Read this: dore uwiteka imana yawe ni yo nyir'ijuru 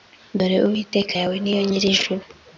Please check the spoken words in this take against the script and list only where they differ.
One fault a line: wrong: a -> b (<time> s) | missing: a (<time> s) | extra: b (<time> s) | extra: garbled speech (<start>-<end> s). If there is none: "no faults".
missing: imana (1.1 s)